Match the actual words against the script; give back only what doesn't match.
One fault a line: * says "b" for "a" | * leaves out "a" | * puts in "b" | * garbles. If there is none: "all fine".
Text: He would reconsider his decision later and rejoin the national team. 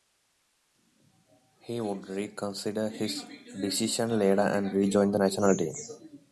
all fine